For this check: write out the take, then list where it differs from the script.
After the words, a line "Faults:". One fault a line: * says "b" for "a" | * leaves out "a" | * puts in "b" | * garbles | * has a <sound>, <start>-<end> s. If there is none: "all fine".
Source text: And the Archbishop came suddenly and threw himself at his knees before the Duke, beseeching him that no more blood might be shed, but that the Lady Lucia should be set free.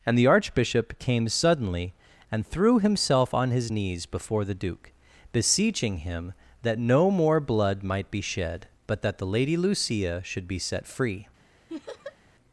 And the Archbishop came suddenly and threw himself on his knees before the Duke, beseeching him that no more blood might be shed, but that the Lady Lucia should be set free.
Faults:
* says "on" for "at"
* has a laugh, 11.7-12.2 s